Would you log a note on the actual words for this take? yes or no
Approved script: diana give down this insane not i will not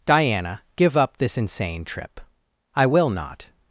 yes